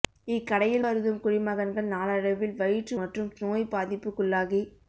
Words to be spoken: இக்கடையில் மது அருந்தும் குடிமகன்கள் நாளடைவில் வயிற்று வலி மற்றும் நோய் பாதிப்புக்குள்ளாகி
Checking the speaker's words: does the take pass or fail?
fail